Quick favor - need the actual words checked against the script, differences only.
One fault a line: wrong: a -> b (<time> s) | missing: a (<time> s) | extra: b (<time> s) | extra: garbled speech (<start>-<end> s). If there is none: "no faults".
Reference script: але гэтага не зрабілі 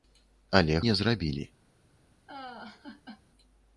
missing: гэтага (0.8 s)